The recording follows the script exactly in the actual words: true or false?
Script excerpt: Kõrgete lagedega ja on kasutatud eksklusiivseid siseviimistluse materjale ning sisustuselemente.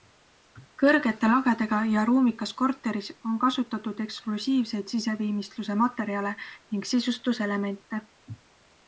false